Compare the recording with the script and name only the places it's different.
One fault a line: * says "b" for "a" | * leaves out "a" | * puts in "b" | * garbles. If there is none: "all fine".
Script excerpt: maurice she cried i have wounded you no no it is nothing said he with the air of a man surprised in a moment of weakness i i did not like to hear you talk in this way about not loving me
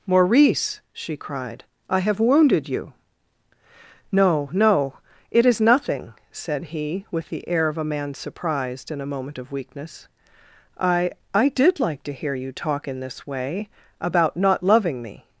* leaves out "not"